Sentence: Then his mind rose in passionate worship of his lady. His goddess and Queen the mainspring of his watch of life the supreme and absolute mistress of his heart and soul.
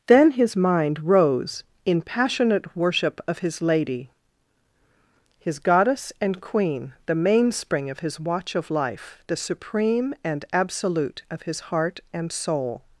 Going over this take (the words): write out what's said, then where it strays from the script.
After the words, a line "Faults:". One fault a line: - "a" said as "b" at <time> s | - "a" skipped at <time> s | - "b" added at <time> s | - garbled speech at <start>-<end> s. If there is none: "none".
Then his mind rose in passionate worship of his lady. His goddess and Queen the mainspring of his watch of life the supreme and absolute of his heart and soul.
Faults:
- "mistress" skipped at 11.2 s